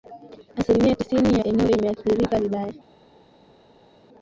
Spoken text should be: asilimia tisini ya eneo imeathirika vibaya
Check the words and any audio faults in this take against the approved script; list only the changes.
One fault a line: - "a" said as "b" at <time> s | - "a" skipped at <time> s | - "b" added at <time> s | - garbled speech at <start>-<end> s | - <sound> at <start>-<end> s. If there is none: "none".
none